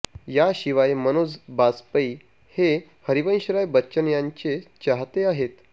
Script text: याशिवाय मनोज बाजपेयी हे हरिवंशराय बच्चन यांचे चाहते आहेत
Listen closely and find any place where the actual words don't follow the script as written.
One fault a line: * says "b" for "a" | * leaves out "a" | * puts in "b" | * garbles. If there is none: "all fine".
all fine